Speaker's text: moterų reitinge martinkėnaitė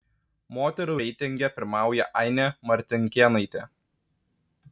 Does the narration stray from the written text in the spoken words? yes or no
yes